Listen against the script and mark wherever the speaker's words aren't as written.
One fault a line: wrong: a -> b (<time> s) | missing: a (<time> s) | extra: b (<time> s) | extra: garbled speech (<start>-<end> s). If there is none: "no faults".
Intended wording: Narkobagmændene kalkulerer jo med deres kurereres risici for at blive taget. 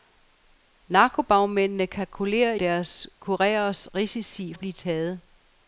missing: jo med (2.5 s)
missing: for (4.5 s)